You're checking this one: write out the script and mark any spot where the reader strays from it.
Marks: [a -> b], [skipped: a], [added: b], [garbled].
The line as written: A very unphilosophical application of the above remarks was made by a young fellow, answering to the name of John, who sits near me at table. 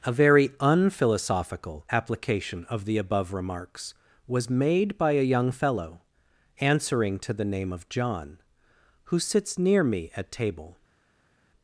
A very unphilosophical application of the above remarks was made by a young fellow, answering to the name of John, who sits near me at table.